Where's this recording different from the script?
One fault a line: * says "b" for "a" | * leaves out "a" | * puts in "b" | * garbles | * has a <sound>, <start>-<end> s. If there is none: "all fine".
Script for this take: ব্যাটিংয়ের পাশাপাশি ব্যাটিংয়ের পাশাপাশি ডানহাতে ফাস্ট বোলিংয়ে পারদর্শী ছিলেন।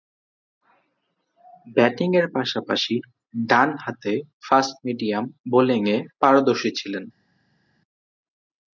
* leaves out "ব্যাটিংয়ের পাশাপাশি"
* puts in "মিডিয়াম"